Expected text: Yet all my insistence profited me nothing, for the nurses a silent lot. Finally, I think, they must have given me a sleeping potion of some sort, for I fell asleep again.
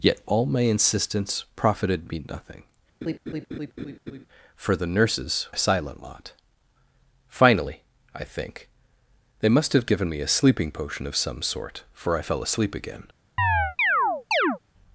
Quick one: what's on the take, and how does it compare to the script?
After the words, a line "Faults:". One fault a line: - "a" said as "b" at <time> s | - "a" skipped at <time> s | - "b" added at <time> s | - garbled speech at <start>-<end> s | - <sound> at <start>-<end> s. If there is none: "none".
Yet all my insistence profited me nothing, for the nurses a silent lot. Finally, I think, they must have given me a sleeping potion of some sort, for I fell asleep again.
Faults:
- laugh at 3.0-4.3 s
- chirp at 13.4-14.6 s